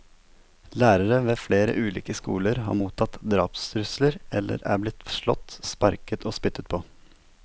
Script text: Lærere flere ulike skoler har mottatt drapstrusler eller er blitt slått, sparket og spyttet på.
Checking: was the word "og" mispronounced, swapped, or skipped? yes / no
no